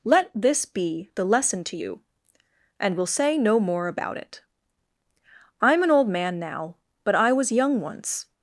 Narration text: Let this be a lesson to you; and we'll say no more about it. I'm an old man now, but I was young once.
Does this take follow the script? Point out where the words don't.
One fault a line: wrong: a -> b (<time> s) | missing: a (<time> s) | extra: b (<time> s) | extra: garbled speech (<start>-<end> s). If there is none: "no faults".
wrong: a -> the (1.1 s)